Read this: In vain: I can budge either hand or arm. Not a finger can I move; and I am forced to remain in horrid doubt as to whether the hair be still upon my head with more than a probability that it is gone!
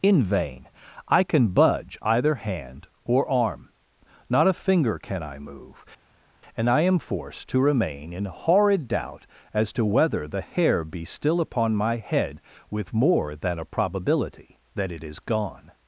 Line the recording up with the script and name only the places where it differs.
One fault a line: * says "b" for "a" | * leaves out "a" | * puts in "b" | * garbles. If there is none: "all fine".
all fine